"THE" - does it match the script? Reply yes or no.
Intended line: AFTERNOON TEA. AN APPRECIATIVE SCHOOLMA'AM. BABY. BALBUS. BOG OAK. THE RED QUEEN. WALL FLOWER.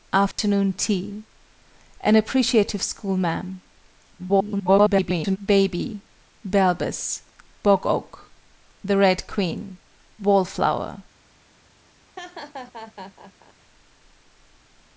yes